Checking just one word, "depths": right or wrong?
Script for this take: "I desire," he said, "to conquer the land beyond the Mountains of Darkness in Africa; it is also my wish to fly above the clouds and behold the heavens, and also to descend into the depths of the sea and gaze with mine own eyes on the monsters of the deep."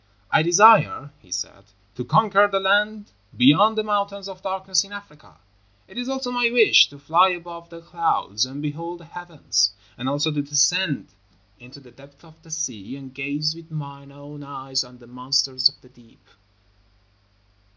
right